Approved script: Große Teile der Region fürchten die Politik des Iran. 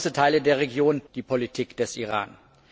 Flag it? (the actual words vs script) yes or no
yes